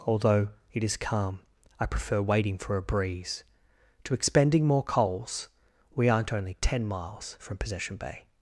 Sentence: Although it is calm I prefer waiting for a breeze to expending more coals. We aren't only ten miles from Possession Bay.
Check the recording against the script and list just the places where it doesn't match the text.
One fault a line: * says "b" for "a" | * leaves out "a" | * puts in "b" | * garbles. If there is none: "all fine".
all fine